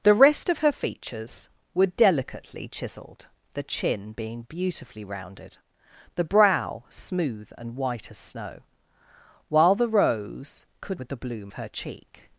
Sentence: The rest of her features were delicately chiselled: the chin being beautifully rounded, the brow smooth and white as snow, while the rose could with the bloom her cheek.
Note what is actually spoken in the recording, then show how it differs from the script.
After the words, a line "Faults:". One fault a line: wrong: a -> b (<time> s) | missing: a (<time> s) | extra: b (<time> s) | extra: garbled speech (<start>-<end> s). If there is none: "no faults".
The rest of her features were delicately chiselled: the chin being beautifully rounded, the brow smooth and white as snow, while the rose could with the bloom her cheek.
Faults:
no faults